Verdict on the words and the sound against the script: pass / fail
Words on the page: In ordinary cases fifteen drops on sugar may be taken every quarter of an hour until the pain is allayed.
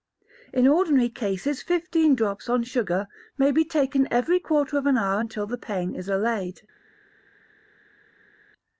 pass